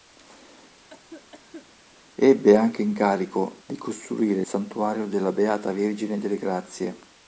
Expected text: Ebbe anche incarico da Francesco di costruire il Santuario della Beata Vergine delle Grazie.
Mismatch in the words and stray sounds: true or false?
true